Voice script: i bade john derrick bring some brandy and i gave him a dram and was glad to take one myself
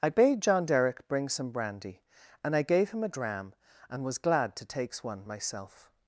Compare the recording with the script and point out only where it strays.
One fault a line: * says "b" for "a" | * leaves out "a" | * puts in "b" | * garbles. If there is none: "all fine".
* says "takes" for "take"